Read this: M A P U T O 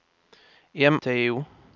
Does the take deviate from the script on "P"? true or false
true